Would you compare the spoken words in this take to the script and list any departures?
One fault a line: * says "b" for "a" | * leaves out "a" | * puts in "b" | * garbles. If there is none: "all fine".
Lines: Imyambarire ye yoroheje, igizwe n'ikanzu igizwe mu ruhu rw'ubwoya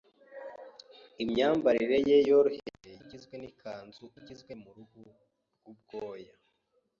all fine